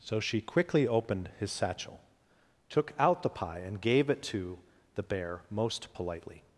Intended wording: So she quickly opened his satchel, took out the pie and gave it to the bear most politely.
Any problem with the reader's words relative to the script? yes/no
no